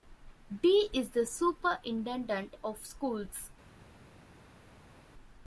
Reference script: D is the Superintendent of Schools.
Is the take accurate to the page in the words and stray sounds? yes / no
yes